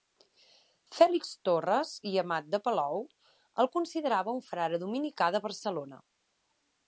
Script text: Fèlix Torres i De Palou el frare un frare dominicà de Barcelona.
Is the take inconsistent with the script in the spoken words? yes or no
yes